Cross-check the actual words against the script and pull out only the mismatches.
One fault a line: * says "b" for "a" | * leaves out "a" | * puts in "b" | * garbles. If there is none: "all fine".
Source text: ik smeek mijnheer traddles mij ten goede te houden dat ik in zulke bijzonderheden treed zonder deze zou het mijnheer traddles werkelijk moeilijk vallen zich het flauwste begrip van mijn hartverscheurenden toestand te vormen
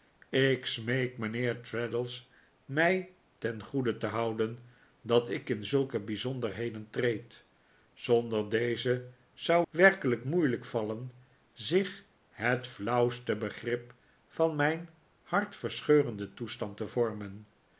* leaves out "het mijnheer traddles"